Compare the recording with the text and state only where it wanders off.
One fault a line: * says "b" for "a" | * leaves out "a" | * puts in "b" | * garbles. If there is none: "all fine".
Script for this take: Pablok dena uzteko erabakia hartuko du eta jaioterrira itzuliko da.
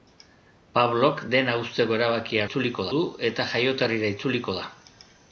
* says "itzuliko" for "hartuko"